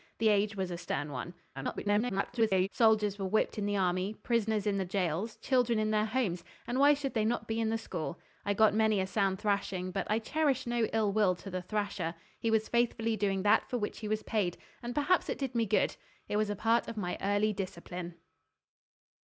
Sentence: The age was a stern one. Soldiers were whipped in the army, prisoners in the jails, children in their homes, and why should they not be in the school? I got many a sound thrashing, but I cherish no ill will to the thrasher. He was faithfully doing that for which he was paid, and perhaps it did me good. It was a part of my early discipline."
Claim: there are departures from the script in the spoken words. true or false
true